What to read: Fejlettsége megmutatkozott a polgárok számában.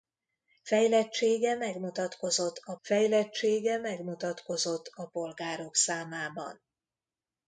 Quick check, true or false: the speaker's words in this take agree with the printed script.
false